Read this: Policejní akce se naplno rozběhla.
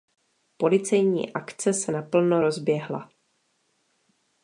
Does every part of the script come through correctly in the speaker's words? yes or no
yes